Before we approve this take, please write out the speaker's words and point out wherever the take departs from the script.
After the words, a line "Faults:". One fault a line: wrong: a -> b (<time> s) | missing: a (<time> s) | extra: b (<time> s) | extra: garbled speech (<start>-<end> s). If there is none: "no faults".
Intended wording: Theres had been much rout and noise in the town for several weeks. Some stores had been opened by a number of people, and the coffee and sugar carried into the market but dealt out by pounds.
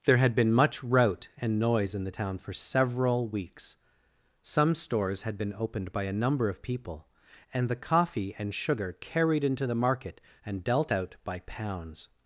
There had been much rout and noise in the town for several weeks. Some stores had been opened by a number of people, and the coffee and sugar carried into the market and dealt out by pounds.
Faults:
wrong: Theres -> There (0.1 s)
wrong: but -> and (10.5 s)